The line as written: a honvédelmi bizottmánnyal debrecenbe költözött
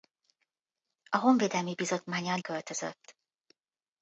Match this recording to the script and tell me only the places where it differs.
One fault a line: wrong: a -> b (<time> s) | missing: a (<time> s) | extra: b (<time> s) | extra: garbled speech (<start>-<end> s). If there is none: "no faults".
missing: debrecenbe (2.4 s)